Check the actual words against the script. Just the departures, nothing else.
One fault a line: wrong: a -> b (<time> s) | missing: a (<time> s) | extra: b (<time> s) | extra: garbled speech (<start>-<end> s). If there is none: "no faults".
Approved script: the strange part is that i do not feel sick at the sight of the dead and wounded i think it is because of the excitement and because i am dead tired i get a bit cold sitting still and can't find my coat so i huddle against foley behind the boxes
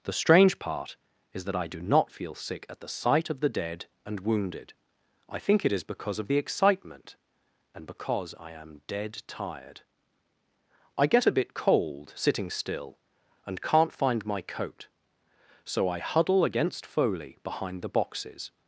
no faults